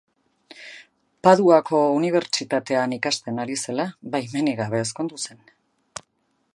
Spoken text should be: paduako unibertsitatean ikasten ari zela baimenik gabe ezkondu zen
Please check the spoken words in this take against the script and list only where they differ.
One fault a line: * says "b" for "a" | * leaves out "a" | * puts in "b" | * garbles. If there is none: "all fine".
all fine